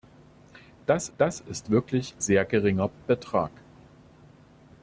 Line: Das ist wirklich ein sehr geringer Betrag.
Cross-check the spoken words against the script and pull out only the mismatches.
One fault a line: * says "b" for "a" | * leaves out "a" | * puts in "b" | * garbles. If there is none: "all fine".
* puts in "das"
* leaves out "ein"